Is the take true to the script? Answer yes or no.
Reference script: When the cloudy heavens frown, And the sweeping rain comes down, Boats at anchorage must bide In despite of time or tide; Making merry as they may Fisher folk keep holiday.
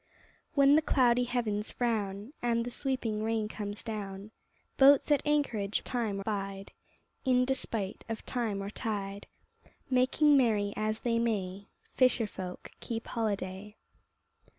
no